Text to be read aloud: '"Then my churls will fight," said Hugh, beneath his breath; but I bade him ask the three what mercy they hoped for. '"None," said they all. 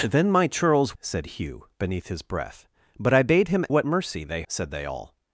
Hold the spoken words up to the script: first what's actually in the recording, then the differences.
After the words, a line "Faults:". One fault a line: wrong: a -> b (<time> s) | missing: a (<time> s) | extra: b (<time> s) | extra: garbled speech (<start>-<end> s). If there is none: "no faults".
'"Then my churls," said Hugh, beneath his breath; but I bade him what mercy they," said they all.
Faults:
missing: will fight (1.0 s)
missing: ask the three (3.7 s)
missing: hoped for None (4.4 s)